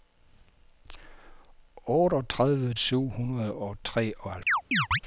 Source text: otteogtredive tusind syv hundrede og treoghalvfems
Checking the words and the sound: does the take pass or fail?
fail